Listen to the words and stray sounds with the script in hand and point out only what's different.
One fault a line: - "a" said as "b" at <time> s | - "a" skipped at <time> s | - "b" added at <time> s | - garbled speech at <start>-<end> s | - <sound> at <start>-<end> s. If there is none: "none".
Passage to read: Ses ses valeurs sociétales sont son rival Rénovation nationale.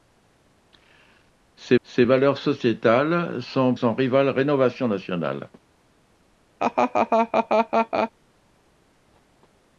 - laugh at 6.6-8.1 s